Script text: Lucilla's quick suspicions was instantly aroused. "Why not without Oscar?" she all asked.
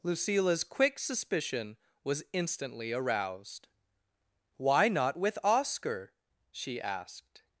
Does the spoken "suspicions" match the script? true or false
false